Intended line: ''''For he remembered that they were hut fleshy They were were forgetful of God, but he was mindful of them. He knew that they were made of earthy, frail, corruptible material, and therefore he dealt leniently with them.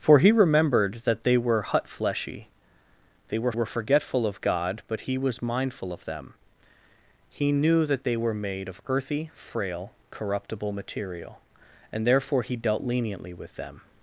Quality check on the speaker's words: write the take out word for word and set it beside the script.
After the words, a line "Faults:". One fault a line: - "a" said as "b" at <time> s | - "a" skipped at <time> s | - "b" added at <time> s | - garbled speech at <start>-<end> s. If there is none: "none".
''''For he remembered that they were hut fleshy They were were forgetful of God, but he was mindful of them. He knew that they were made of earthy, frail, corruptible material, and therefore he dealt leniently with them.
Faults:
none